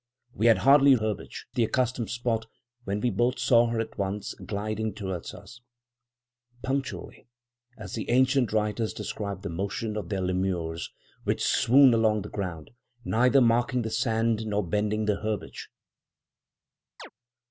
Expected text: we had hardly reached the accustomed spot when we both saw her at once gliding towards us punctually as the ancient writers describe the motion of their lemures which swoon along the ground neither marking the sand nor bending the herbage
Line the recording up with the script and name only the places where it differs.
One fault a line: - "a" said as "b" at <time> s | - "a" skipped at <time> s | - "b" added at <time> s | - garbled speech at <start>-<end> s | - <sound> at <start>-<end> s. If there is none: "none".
- "reached" said as "herbage" at 1.0 s
- chirp at 17.0-17.1 s